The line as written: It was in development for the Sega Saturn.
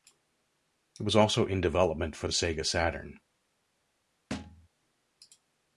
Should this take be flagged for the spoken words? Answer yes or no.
yes